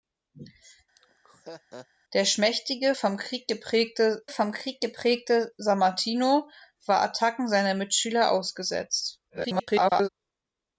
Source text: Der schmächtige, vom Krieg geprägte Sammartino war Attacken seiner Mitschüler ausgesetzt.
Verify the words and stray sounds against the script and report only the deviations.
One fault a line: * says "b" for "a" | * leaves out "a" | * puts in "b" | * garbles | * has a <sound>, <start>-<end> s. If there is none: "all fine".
* has a laugh, 1.0-1.9 s
* puts in "vom Krieg geprägte"
* garbles